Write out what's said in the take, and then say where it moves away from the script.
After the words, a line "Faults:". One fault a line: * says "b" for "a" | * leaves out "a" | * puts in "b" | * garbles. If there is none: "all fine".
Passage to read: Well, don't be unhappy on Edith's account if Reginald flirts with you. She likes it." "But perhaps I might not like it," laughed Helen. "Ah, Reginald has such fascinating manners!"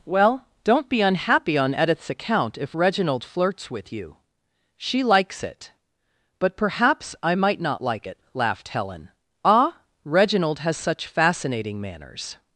Well, don't be unhappy on Edith's account if Reginald flirts with you. She likes it." "But perhaps I might not like it," laughed Helen. "Ah, Reginald has such fascinating manners!"
Faults:
all fine